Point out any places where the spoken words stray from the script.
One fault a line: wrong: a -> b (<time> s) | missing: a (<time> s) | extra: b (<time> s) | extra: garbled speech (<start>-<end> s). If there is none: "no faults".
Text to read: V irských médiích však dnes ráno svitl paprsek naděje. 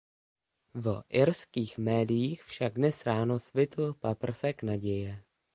no faults